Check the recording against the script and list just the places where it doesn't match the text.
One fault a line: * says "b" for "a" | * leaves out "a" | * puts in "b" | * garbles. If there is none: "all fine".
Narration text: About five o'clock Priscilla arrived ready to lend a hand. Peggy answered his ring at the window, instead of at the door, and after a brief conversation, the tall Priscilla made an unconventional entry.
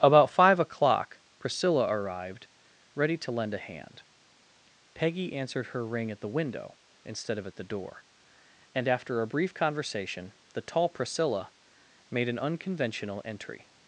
* says "her" for "his"